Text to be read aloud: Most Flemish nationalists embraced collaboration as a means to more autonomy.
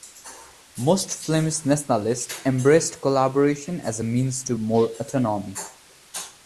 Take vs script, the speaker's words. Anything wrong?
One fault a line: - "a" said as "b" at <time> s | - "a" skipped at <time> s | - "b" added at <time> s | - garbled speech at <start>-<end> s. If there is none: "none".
none